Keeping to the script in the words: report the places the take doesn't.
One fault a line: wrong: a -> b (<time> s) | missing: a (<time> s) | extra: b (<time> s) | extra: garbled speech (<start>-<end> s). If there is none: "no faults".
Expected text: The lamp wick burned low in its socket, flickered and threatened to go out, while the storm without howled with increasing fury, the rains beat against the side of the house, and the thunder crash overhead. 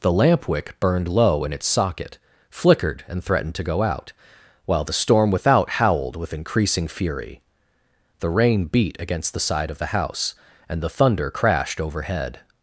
wrong: rains -> rain (8.3 s)
wrong: crash -> crashed (11.3 s)